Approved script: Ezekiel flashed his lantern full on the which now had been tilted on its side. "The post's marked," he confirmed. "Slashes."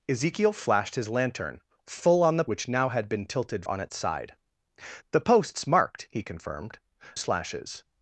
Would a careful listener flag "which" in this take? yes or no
no